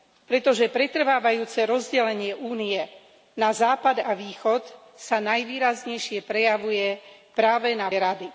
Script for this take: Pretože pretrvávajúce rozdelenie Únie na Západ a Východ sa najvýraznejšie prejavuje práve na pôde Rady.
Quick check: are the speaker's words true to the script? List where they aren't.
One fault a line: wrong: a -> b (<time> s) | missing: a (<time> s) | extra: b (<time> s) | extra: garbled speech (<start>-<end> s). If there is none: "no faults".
missing: pôde (7.9 s)